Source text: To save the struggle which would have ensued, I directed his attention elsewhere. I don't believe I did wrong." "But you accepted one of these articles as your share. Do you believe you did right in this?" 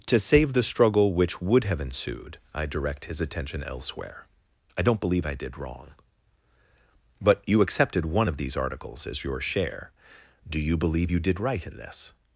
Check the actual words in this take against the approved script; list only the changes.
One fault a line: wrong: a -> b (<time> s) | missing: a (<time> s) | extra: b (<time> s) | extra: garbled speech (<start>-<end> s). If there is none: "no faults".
wrong: directed -> direct (2.6 s)